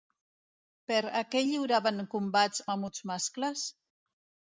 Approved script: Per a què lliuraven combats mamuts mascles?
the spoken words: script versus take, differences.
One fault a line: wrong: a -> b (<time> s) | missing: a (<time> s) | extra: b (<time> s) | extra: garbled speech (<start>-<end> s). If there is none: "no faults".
no faults